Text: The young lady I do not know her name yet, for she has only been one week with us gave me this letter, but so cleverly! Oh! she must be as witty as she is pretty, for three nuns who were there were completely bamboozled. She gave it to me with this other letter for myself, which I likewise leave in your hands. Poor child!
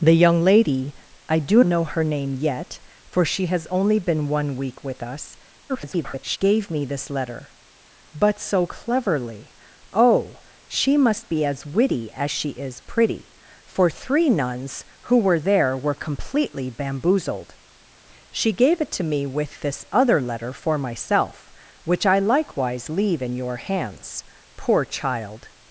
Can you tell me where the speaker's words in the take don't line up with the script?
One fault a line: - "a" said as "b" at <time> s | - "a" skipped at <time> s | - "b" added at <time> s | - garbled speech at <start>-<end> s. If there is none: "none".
- "not" skipped at 1.6 s
- garbled speech at 5.7-6.4 s